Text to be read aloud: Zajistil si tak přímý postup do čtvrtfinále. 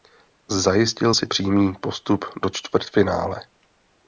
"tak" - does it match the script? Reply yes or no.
no